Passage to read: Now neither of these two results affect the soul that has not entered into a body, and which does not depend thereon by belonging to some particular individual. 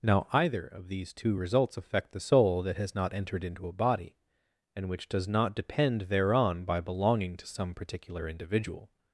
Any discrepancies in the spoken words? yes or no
yes